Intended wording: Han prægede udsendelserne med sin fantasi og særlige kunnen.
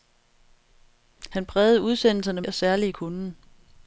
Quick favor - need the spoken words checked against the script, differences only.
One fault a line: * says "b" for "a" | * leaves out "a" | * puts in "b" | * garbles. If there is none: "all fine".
* leaves out "med sin fantasi"